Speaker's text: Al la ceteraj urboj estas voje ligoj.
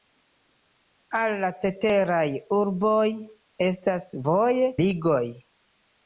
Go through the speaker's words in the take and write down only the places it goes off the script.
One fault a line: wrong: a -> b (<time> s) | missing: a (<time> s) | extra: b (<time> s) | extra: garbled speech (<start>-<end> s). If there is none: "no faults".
no faults